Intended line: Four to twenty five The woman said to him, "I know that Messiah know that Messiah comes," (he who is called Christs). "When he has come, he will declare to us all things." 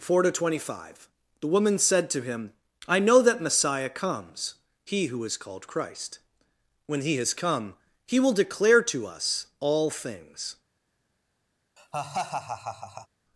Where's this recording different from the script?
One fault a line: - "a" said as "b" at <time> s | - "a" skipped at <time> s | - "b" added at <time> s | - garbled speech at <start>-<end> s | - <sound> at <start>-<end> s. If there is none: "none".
- "know that Messiah" skipped at 3.9 s
- "Christs" said as "Christ" at 5.7 s
- laugh at 11.8-13.1 s